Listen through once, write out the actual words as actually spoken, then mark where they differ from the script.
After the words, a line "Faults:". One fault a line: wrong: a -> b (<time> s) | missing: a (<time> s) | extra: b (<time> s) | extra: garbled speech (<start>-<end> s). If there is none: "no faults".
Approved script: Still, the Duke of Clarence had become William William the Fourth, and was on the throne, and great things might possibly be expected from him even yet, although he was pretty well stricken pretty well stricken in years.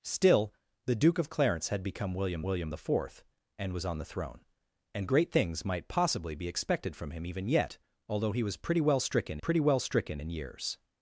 Still, the Duke of Clarence had become William William the Fourth, and was on the throne, and great things might possibly be expected from him even yet, although he was pretty well stricken pretty well stricken in years.
Faults:
no faults